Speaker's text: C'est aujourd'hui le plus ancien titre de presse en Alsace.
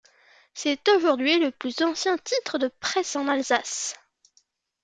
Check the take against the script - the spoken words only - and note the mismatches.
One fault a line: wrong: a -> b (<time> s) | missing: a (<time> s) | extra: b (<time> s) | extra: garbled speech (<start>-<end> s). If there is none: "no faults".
no faults